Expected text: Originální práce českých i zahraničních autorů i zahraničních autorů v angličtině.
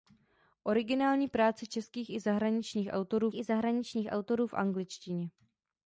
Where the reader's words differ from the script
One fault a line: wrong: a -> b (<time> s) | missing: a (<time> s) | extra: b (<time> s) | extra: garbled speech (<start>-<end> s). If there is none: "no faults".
no faults